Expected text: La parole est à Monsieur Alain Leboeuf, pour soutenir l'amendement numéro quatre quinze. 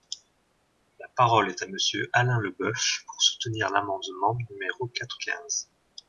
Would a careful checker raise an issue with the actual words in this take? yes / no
no